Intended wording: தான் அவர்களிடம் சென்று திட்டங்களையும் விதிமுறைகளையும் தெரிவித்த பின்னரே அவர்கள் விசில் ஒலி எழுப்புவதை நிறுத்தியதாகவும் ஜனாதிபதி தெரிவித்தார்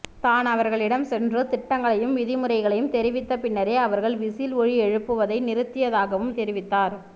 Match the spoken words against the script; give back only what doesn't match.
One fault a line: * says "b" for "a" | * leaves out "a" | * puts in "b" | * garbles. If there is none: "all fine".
* leaves out "ஜனாதிபதி"